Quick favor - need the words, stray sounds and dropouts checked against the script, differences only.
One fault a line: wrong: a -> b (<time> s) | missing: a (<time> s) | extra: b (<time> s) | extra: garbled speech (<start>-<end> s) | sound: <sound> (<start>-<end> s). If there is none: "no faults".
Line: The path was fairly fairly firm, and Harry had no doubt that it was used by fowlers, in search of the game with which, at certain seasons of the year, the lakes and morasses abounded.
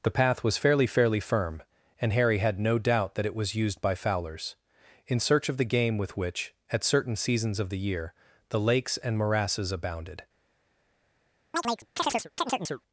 sound: chirp (11.5-12.8 s)